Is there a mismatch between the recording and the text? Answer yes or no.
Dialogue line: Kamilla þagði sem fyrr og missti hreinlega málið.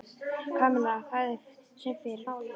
yes